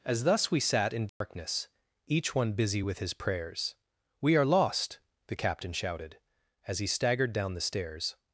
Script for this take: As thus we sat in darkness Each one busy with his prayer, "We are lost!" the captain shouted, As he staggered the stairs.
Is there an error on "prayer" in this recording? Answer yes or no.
yes